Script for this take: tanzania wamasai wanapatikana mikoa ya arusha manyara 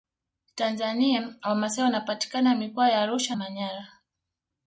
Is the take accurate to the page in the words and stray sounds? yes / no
yes